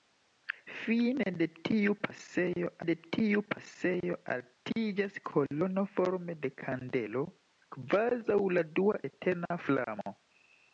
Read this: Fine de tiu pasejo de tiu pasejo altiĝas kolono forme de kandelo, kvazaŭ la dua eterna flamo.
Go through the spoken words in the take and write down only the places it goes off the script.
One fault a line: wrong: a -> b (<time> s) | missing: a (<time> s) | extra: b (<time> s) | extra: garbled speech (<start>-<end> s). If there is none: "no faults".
no faults